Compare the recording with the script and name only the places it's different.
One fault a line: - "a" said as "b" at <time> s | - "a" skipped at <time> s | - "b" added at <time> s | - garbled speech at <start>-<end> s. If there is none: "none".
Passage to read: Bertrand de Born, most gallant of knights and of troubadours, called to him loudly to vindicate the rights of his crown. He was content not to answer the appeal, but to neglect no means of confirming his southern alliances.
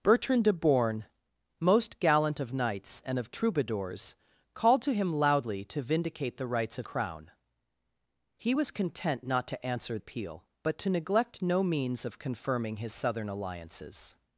- "his" skipped at 6.9 s
- "the" skipped at 10.0 s